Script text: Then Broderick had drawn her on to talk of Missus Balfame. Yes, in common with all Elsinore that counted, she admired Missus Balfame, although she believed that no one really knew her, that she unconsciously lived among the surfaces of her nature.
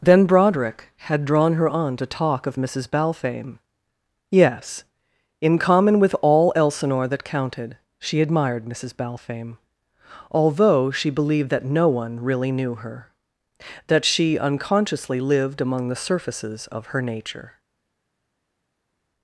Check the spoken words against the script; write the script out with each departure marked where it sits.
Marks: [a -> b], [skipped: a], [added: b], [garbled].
Then Broderick had drawn her on to talk of Missus Balfame. Yes, in common with all Elsinore that counted, she admired Missus Balfame, although she believed that no one really knew her, that she unconsciously lived among the surfaces of her nature.